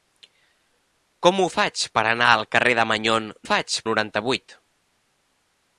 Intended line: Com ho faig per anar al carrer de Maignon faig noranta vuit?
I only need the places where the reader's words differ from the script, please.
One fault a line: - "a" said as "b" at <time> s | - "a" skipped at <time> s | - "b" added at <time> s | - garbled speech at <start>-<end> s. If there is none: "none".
none